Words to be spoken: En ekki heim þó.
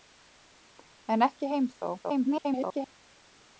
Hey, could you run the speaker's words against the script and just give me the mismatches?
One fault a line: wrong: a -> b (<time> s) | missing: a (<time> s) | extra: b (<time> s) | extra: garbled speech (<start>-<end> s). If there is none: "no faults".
extra: garbled speech (2.0-2.9 s)